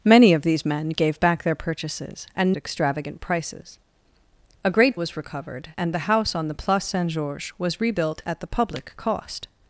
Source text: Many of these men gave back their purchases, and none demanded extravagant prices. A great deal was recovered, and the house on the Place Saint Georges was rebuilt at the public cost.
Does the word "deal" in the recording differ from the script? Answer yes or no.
yes